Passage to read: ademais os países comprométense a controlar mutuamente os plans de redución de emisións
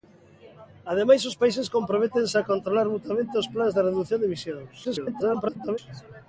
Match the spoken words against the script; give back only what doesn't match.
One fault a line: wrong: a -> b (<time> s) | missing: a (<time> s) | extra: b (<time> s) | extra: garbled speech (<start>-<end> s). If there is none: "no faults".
extra: garbled speech (4.8-5.8 s)